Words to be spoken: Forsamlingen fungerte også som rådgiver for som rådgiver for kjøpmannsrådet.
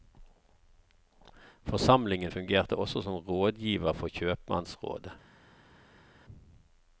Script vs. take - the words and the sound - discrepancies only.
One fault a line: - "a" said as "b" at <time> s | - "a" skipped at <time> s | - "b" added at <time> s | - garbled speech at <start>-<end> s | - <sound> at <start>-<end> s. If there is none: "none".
- "som rådgiver for" skipped at 4.1 s